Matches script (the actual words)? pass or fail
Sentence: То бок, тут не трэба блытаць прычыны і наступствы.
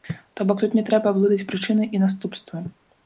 pass